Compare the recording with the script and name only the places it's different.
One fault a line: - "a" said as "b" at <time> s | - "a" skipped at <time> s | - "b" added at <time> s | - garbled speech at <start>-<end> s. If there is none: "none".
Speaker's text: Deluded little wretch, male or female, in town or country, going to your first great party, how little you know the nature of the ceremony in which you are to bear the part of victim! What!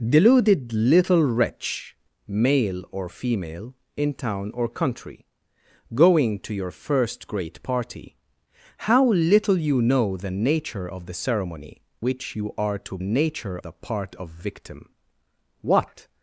- "in" skipped at 11.8 s
- "bear" said as "nature" at 13.0 s